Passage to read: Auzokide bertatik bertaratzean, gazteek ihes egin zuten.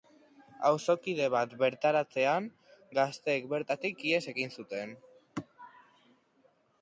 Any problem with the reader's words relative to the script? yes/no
yes